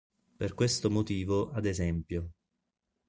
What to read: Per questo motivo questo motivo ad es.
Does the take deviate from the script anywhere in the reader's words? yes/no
yes